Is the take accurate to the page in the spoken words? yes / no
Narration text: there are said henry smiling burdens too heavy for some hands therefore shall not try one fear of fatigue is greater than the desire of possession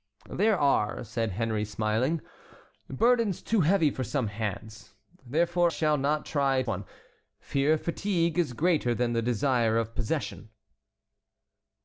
yes